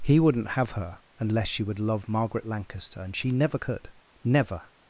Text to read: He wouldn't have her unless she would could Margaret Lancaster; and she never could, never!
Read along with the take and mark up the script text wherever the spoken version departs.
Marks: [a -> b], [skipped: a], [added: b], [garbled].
He wouldn't have her unless she would [could -> love] Margaret Lancaster; and she never could, never!